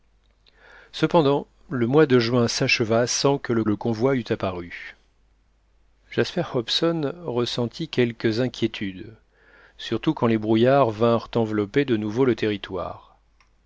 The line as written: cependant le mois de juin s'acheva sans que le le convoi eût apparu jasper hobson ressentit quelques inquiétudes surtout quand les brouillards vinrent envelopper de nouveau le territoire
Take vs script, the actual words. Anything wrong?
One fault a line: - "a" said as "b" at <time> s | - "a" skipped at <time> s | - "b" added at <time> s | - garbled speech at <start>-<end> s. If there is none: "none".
none